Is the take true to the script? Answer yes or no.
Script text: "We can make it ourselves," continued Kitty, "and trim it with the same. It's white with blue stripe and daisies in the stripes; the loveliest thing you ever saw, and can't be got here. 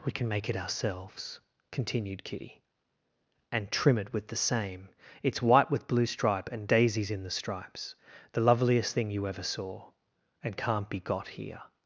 yes